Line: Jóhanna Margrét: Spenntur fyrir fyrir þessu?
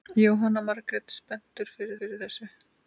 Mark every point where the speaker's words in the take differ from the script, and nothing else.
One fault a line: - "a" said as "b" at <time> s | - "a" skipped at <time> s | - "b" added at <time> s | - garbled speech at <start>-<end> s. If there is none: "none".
none